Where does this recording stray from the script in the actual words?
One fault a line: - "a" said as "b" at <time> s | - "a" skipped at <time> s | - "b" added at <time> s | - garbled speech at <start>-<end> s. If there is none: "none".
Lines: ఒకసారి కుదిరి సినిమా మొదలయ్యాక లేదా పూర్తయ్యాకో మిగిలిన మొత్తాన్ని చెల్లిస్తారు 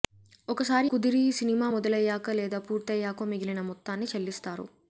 none